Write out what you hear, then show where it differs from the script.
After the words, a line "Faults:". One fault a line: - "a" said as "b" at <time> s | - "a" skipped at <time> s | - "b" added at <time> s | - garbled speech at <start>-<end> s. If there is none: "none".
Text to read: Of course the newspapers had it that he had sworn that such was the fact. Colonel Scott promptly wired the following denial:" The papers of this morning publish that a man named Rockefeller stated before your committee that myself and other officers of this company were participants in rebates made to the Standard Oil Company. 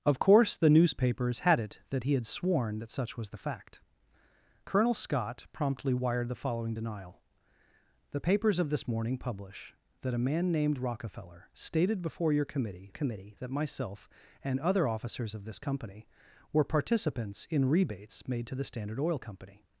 Of course the newspapers had it that he had sworn that such was the fact. Colonel Scott promptly wired the following denial:" The papers of this morning publish that a man named Rockefeller stated before your committee committee that myself and other officers of this company were participants in rebates made to the Standard Oil Company.
Faults:
- "committee" added at 12.9 s